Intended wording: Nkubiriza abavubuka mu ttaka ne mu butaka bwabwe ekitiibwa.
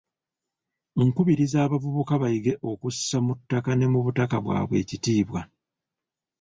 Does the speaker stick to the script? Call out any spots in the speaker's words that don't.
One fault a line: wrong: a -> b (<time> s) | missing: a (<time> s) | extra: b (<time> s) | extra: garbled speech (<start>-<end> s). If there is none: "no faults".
extra: bayige okussa (2.2 s)